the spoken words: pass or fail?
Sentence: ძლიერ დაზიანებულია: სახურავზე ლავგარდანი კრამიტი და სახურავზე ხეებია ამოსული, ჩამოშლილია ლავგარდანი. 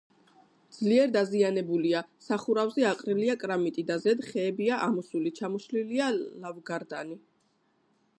fail